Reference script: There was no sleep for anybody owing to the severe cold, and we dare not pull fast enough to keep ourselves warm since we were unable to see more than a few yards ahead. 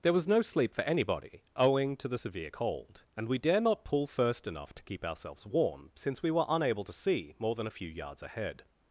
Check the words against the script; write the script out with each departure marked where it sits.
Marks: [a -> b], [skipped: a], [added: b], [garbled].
There was no sleep for anybody owing to the severe cold, and we dare not pull [fast -> first] enough to keep ourselves warm since we were unable to see more than a few yards ahead.